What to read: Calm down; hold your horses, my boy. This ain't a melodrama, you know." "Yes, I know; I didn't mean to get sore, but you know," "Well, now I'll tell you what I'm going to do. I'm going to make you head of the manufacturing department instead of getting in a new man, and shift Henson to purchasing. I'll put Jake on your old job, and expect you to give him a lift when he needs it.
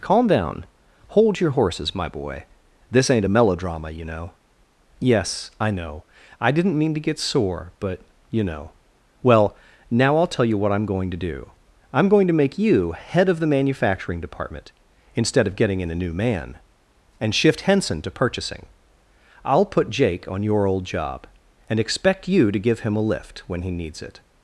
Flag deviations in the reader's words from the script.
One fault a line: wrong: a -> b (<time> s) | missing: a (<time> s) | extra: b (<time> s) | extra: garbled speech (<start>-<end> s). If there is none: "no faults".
no faults